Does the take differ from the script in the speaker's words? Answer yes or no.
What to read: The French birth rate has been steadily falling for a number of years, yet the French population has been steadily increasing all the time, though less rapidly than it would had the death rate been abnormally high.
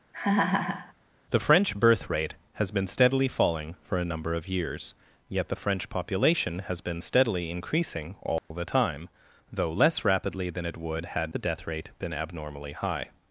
no